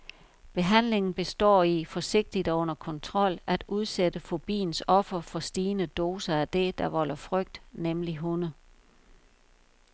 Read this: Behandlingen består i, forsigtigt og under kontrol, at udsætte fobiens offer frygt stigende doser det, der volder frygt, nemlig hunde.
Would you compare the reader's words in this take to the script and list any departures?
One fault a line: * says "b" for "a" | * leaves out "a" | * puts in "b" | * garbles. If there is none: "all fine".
* says "for" for "frygt"
* puts in "af"